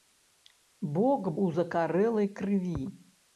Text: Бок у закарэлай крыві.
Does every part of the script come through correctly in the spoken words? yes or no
yes